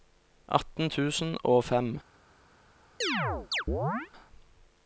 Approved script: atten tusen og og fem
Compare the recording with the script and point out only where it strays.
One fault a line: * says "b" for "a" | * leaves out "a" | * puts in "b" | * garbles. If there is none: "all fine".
* leaves out "og"